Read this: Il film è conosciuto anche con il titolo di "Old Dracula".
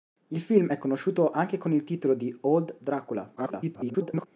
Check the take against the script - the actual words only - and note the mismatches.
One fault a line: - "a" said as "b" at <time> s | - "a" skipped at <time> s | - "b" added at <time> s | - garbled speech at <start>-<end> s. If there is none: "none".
- garbled speech at 3.4-4.3 s